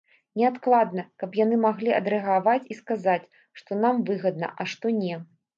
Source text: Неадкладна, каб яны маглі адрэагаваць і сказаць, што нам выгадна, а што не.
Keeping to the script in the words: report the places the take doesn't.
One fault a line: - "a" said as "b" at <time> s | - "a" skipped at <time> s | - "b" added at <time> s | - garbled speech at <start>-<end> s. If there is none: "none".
none